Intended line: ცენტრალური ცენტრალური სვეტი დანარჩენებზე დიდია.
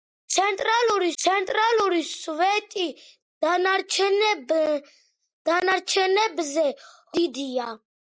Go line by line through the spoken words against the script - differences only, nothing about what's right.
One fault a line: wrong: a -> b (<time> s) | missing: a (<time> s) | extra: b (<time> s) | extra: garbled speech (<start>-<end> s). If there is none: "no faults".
no faults